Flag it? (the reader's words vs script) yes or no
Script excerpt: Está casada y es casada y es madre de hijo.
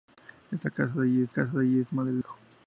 no